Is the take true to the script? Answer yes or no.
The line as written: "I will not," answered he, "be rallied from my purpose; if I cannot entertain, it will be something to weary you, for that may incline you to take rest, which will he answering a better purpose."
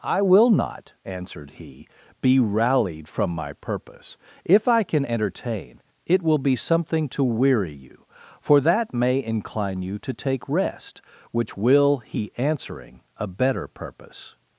no